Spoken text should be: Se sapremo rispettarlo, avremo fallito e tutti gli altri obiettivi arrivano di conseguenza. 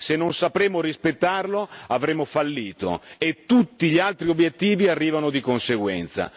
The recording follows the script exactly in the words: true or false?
false